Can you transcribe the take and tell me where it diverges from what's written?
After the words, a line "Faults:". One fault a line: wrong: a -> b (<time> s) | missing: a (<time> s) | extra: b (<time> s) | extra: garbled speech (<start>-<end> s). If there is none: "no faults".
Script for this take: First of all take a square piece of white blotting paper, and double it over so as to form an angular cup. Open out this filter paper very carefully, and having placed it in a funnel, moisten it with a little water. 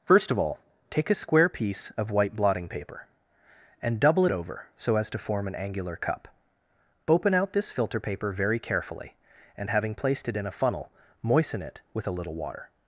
First of all take a square piece of white blotting paper, and double it over so as to form an angular cup. Open out this filter paper very carefully, and having placed it in a funnel, moisten it with a little water.
Faults:
no faults